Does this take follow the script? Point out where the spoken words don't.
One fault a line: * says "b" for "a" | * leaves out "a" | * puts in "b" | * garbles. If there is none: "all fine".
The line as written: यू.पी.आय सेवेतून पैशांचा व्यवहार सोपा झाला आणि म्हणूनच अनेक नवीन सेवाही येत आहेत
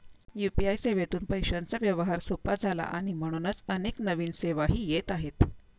all fine